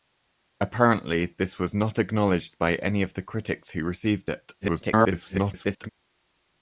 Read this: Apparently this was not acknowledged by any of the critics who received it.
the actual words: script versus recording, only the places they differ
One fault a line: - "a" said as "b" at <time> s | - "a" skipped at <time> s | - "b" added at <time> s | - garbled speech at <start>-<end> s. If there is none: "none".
- garbled speech at 4.6-5.9 s